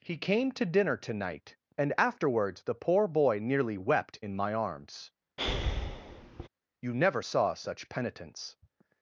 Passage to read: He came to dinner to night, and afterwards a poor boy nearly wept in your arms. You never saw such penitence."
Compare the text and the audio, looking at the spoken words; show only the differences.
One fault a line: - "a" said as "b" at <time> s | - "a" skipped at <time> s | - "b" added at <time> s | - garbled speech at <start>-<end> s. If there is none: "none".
- "a" said as "the" at 2.6 s
- "your" said as "my" at 4.4 s